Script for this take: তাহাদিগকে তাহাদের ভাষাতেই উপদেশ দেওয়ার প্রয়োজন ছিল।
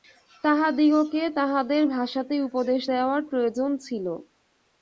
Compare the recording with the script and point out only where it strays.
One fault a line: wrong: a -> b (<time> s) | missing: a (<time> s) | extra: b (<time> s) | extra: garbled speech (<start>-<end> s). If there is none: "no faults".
no faults